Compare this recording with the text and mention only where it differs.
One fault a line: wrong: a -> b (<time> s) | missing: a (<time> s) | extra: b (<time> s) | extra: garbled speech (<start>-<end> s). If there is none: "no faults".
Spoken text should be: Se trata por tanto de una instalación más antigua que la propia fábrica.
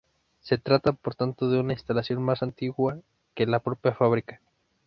no faults